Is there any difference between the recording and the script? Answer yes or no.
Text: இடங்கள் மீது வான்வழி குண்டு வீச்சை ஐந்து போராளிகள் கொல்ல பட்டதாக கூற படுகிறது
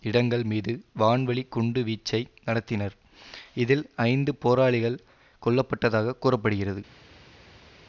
yes